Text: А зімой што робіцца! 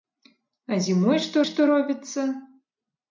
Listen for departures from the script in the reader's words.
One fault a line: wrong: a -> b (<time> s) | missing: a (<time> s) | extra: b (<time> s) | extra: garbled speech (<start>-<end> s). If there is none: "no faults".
extra: што (1.5 s)